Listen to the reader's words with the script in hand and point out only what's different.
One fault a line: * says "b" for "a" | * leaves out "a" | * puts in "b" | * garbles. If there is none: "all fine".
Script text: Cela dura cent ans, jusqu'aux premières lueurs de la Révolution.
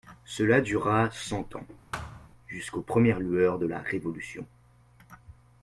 all fine